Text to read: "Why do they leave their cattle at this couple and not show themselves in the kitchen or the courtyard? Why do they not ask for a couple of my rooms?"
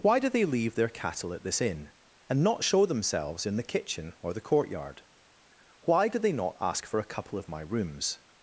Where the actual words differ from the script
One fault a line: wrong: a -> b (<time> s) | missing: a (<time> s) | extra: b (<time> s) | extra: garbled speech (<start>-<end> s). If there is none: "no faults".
wrong: couple -> inn (1.6 s)